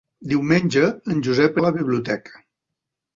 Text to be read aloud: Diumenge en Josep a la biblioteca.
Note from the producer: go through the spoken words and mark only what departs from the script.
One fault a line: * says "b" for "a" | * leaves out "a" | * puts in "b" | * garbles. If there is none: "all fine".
all fine